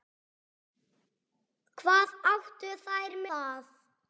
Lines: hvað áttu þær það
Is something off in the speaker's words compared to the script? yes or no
no